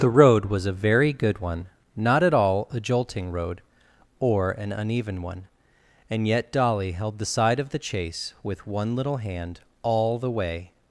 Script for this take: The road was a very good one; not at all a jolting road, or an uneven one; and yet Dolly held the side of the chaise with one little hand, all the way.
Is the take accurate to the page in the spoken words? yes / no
yes